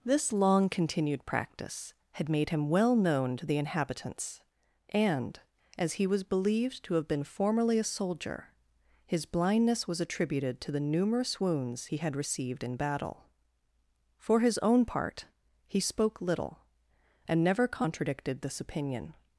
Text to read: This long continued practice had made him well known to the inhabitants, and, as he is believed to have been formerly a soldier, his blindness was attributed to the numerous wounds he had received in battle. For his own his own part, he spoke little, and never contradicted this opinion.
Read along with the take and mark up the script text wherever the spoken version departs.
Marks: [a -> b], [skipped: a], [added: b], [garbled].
This long continued practice had made him well known to the inhabitants, and, as he [is -> was] believed to have been formerly a soldier, his blindness was attributed to the numerous wounds he had received in battle. For his own [skipped: his own] part, he spoke little, and never contradicted this opinion.